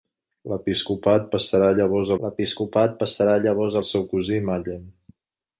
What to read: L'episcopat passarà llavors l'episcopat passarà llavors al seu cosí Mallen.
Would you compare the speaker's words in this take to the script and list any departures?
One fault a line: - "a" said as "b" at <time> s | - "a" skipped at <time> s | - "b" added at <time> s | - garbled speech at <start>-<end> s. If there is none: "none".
none